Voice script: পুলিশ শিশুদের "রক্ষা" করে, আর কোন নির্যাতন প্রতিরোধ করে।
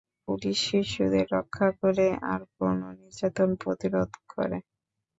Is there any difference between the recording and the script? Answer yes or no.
no